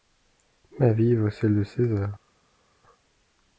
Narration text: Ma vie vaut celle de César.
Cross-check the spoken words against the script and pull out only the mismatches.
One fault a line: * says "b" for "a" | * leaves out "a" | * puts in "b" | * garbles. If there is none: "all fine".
all fine